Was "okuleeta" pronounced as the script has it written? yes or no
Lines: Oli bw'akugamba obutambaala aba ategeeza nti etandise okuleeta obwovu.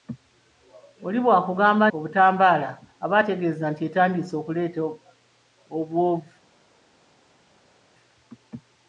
yes